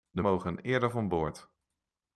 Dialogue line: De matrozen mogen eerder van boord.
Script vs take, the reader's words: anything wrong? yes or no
yes